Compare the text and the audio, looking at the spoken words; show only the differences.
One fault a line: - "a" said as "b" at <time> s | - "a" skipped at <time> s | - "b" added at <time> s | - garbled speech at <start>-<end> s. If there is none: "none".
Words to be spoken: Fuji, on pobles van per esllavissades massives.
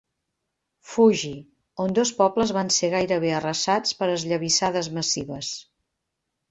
- "dos" added at 2.0 s
- "ser gairebé arrasats" added at 2.8 s